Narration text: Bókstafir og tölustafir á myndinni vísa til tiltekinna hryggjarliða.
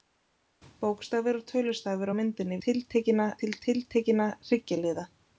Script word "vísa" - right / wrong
wrong